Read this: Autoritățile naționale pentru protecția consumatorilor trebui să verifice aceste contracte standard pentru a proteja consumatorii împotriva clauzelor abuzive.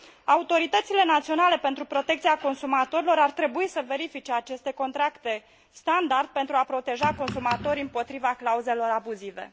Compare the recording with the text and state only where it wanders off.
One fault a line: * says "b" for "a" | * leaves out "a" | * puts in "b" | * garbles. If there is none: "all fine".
* puts in "ar"